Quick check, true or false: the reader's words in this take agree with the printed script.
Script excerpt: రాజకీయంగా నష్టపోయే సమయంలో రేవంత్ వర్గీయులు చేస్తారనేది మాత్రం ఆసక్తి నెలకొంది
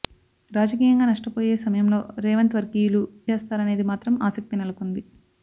true